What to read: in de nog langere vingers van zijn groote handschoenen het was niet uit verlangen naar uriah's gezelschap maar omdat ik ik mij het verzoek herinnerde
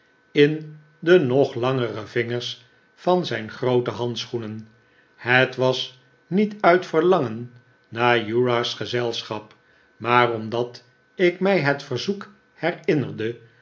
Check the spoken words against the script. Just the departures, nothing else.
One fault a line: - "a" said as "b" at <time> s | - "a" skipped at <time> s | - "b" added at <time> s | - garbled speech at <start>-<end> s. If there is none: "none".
- "ik" skipped at 11.4 s